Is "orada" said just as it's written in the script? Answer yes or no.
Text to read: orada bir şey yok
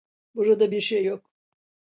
no